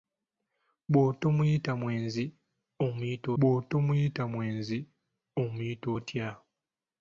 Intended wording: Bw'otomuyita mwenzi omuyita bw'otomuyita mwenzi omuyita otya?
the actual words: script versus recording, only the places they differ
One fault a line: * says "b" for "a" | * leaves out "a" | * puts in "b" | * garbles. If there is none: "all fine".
all fine